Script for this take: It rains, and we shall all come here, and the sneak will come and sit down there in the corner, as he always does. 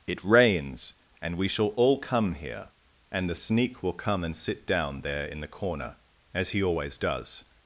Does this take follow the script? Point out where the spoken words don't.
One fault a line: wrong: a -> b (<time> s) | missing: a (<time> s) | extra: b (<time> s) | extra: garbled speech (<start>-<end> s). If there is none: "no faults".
no faults